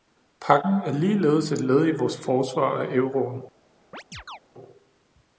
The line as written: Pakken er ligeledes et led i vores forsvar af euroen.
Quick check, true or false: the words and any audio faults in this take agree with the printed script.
false